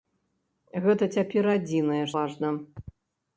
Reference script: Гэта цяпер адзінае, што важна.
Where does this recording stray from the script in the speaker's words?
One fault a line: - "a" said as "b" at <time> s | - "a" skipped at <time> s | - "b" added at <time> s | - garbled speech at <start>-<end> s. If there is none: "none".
- "што" skipped at 2.0 s